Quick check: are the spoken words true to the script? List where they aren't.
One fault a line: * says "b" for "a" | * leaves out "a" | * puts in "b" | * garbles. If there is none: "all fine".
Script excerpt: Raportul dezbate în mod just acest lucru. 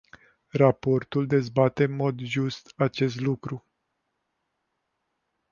all fine